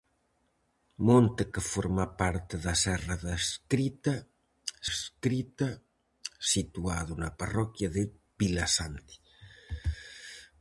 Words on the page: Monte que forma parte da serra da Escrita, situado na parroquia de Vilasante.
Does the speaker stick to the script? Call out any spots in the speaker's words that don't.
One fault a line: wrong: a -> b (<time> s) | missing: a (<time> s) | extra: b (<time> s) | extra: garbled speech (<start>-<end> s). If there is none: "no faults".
extra: Escrita (4.9 s)